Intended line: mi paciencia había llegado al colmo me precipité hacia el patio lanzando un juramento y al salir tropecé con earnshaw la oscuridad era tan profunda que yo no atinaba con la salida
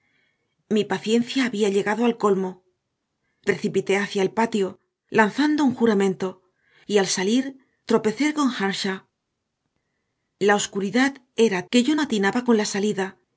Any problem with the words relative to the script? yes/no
yes